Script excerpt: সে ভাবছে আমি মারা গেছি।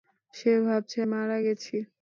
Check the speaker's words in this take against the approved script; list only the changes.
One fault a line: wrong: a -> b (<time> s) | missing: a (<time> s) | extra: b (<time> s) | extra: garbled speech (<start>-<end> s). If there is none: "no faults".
missing: আমি (1.0 s)